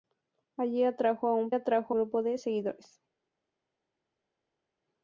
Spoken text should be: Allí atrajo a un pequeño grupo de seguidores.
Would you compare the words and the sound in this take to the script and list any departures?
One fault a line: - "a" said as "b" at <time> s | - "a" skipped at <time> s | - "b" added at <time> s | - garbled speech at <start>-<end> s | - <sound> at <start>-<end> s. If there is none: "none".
- "pequeño" said as "atrajo" at 1.5 s